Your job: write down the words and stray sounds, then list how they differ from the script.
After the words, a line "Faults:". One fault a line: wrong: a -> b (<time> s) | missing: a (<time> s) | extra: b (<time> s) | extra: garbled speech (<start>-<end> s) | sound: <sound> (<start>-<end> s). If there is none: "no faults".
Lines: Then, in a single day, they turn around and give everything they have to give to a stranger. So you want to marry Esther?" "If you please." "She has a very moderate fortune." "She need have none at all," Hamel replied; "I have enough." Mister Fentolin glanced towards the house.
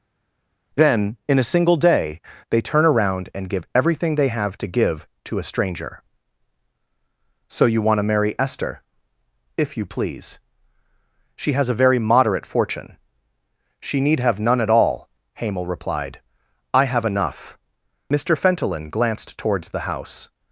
Then, in a single day, they turn around and give everything they have to give to a stranger. So you want to marry Esther?" "If you please." "She has a very moderate fortune." "She need have none at all," Hamel replied; "I have enough." Mister Fentolin glanced towards the house.
Faults:
no faults